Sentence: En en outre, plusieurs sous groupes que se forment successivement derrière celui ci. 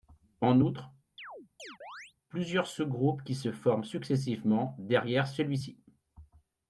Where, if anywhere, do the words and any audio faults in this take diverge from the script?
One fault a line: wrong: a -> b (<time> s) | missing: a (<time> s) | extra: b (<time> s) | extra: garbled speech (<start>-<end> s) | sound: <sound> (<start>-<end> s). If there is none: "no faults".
missing: en (0.6 s)
sound: chirp (1.2-2.1 s)
wrong: que -> qui (3.2 s)